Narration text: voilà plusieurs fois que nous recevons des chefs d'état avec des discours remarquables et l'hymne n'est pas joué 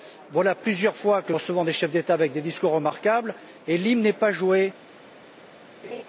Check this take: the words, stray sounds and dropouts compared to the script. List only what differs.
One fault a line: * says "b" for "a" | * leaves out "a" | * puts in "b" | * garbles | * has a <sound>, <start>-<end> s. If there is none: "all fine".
* leaves out "nous"
* has a laugh, 5.8-6.0 s